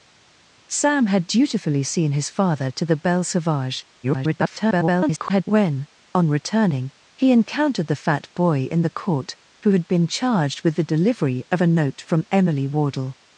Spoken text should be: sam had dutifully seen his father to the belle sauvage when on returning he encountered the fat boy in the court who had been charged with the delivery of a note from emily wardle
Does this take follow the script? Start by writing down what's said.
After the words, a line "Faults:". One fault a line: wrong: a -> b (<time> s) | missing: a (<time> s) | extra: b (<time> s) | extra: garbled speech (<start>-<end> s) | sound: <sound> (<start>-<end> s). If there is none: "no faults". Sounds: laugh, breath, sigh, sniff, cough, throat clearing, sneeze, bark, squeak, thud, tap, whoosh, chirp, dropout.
sam had dutifully seen his father to the belle sauvage [garbled] when on returning he encountered the fat boy in the court who had been charged with the delivery of a note from emily wardle
Faults:
extra: garbled speech (4.0-5.4 s)